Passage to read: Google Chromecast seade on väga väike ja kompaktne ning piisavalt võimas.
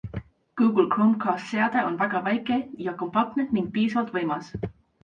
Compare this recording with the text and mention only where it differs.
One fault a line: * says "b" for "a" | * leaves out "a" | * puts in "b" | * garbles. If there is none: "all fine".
all fine